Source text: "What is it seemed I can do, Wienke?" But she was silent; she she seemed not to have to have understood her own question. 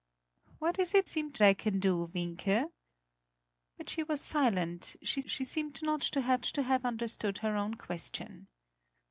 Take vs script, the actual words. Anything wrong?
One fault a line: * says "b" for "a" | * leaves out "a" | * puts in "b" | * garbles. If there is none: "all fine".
all fine